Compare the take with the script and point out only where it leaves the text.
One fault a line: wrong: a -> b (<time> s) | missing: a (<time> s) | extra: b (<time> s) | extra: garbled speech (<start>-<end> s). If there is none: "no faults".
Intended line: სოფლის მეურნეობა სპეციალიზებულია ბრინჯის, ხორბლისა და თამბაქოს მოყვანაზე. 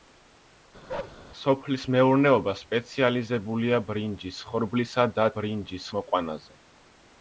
wrong: თამბაქოს -> ბრინჯის (5.4 s)